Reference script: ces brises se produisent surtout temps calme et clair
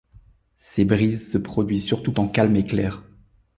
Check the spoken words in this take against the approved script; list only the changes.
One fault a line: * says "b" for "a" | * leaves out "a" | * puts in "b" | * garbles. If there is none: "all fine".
all fine